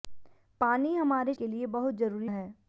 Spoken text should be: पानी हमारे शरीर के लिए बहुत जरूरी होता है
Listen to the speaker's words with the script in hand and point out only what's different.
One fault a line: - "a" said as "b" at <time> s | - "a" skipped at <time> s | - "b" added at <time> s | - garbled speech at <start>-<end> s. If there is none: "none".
- "शरीर" skipped at 1.3 s
- "होता" skipped at 2.3 s